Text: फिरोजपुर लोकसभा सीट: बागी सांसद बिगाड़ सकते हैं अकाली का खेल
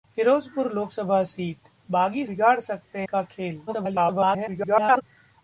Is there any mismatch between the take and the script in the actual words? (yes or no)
yes